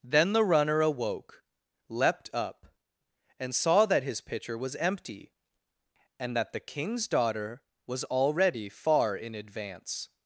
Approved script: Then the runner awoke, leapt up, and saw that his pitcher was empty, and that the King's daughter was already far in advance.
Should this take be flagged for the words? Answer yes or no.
no